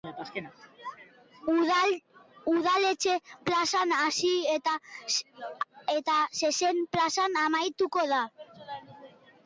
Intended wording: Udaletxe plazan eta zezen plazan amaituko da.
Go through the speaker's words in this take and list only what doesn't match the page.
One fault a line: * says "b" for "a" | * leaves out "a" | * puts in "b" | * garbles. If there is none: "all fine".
* puts in "hasi"